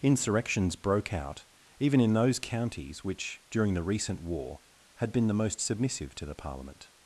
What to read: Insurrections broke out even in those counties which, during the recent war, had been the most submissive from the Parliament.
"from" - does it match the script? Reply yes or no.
no